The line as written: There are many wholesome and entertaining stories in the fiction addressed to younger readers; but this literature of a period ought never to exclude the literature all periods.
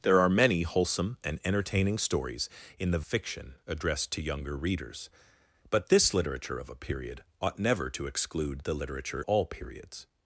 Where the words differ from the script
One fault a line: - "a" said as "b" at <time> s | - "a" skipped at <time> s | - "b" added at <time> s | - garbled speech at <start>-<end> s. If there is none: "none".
none